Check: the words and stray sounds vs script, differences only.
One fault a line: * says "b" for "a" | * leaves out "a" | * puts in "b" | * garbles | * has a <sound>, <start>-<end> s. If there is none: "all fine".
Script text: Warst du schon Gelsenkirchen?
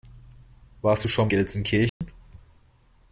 * has a dropout, 1.9-2.0 s